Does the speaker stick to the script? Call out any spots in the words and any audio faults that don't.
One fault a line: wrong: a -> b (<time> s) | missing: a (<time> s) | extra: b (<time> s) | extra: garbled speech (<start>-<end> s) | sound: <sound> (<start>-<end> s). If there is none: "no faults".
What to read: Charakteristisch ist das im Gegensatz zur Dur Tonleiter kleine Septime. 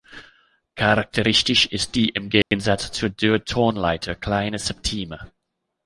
wrong: das -> die (1.9 s)
sound: dropout (2.4-2.5 s)